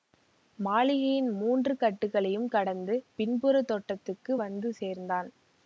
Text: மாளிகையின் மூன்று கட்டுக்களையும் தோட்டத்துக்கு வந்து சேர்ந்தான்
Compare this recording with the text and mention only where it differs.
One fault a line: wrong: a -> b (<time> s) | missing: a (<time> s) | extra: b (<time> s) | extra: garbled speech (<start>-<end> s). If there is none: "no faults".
extra: கடந்து பின்புறத் (2.5 s)